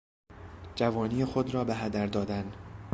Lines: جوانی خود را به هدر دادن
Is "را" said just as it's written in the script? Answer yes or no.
yes